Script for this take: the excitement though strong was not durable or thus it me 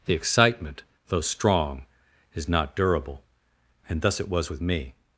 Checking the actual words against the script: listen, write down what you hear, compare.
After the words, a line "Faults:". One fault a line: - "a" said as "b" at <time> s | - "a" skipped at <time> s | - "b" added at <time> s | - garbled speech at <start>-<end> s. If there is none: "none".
the excitement though strong is not durable and thus it was with me
Faults:
- "was" said as "is" at 2.3 s
- "or" said as "and" at 3.9 s
- "was with" added at 4.3 s